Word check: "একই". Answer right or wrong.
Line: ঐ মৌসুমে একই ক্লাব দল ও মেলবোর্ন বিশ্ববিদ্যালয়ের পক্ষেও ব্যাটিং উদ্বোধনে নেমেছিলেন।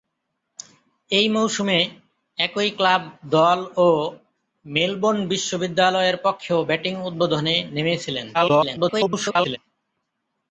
right